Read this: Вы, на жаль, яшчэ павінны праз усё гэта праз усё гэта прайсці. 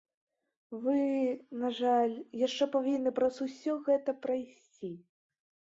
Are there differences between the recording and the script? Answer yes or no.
yes